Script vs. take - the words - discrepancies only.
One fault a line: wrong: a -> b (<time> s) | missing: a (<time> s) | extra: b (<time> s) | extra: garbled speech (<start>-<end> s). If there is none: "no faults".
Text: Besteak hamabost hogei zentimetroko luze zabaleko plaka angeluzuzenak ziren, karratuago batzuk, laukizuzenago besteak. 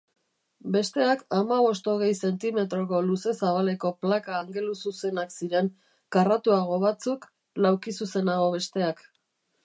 no faults